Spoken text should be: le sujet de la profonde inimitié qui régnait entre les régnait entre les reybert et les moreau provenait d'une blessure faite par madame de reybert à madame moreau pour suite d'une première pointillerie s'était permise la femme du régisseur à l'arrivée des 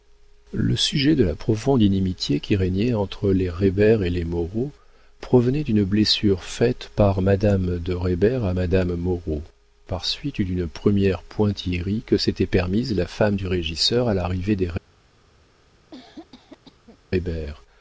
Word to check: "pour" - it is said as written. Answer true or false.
false